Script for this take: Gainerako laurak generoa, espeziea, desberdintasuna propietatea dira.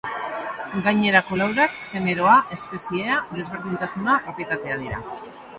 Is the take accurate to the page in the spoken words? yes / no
yes